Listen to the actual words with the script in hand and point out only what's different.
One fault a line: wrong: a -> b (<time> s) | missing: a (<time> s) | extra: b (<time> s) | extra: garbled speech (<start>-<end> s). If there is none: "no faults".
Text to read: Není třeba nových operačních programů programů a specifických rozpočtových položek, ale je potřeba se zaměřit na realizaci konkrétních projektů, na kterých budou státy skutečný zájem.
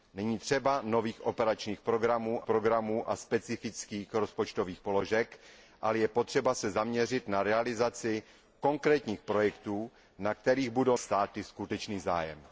no faults